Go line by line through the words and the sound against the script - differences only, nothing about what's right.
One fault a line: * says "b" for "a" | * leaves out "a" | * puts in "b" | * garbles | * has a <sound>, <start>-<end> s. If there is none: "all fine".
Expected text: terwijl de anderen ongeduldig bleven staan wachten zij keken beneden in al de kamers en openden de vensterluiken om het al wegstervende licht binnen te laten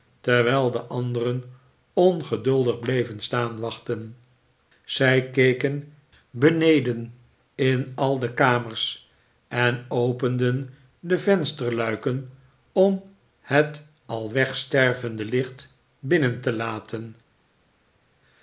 all fine